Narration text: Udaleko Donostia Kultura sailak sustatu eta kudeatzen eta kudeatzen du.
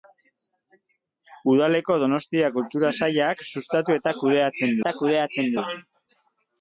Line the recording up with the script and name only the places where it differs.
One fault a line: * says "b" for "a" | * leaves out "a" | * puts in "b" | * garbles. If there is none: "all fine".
all fine